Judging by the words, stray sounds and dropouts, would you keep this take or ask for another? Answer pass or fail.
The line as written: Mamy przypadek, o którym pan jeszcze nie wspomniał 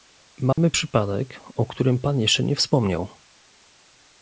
fail